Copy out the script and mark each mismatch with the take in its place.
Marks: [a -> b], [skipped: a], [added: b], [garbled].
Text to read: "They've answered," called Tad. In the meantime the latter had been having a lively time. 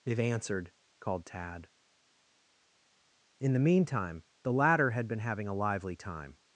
"They've answered," called Tad. In the meantime the latter had been having a lively time.